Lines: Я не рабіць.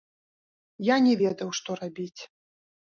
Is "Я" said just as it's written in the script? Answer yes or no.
yes